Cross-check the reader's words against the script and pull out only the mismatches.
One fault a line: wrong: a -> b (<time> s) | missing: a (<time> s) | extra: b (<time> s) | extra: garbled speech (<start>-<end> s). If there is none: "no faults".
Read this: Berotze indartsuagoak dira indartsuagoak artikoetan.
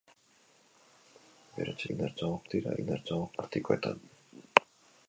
no faults